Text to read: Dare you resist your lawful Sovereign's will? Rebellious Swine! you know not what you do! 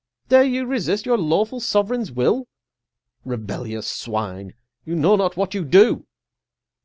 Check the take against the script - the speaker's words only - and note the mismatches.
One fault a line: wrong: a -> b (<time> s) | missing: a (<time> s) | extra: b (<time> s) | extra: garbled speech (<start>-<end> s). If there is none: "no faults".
no faults